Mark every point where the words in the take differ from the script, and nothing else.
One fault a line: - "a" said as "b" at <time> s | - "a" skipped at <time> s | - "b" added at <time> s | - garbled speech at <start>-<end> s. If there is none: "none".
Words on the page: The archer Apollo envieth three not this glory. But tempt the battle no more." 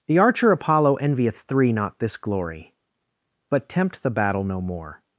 none